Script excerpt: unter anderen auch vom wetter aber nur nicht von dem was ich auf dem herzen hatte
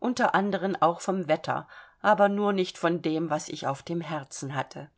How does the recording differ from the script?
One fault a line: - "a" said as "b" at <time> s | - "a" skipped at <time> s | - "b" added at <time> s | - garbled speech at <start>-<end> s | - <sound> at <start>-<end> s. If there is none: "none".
none